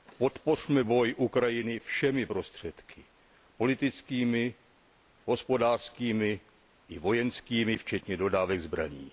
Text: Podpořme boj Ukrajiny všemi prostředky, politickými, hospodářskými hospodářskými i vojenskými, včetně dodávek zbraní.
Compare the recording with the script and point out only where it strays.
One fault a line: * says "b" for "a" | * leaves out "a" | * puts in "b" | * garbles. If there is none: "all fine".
* leaves out "hospodářskými"